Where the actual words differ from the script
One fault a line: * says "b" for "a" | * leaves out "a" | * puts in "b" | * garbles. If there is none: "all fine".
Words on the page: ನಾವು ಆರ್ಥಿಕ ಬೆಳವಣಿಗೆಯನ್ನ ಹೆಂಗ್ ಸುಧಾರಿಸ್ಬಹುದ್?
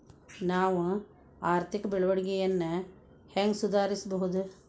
all fine